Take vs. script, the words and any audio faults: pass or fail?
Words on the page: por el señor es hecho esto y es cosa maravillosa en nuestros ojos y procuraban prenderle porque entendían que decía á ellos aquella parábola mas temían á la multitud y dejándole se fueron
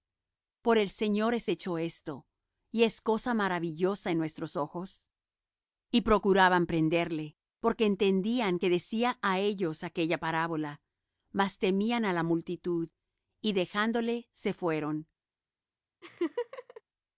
fail